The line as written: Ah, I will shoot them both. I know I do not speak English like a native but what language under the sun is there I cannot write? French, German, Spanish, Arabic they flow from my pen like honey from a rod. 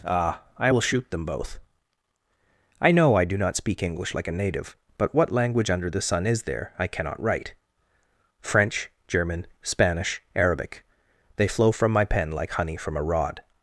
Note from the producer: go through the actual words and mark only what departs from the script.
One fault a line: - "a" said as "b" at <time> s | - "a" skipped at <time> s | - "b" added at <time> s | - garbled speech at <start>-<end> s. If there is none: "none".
none